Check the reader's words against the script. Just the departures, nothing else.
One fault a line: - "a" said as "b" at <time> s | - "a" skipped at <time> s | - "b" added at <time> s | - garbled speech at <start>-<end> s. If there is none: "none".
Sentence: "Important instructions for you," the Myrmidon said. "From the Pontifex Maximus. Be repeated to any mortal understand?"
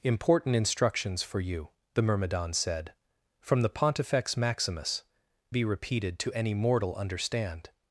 none